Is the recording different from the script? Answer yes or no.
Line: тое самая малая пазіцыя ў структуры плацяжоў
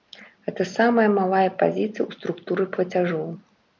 yes